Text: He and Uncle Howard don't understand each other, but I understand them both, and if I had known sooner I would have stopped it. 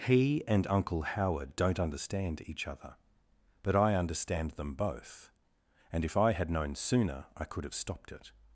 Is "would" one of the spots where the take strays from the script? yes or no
yes